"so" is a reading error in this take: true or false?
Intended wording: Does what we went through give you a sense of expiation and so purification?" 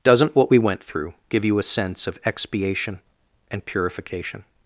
true